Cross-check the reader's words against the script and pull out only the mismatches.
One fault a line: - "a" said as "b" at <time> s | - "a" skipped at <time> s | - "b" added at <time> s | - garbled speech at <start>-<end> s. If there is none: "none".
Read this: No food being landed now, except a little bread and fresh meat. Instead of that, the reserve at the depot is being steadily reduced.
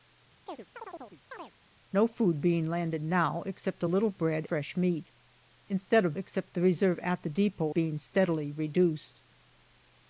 - "and" skipped at 4.4 s
- "that" said as "except" at 6.2 s
- "is" skipped at 7.8 s